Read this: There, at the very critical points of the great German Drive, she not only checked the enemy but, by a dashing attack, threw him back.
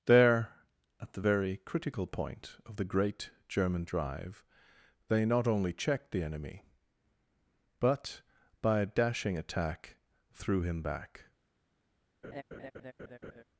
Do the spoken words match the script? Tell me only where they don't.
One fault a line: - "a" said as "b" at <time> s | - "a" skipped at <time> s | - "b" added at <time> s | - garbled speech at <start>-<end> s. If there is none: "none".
- "points" said as "point" at 2.1 s
- "she" said as "they" at 5.1 s